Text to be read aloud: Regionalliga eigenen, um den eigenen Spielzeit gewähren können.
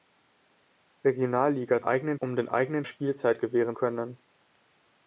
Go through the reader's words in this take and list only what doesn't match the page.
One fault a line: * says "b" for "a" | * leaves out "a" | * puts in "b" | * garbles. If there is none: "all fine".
all fine